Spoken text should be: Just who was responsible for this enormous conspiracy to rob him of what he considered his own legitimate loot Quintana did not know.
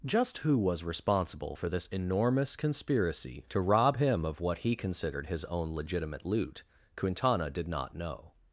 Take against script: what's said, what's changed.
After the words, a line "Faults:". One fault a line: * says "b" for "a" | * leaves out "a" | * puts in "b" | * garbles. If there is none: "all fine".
Just who was responsible for this enormous conspiracy to rob him of what he considered his own legitimate loot Quintana did not know.
Faults:
all fine